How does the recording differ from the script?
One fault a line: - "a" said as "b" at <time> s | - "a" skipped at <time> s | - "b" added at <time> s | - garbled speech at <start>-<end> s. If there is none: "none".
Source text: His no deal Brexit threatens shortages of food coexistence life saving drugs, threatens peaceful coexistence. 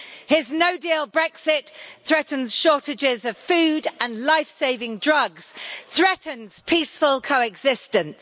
- "coexistence" said as "and" at 4.0 s